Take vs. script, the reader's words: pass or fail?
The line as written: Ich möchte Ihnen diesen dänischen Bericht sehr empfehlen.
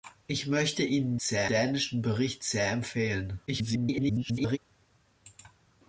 fail